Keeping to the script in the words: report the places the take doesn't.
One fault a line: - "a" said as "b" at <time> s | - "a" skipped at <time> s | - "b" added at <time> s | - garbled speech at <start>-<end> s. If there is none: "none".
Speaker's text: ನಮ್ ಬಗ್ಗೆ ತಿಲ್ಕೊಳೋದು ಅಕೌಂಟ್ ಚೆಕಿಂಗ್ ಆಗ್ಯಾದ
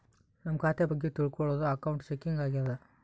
- "ಖಾತೆ" added at 0.6 s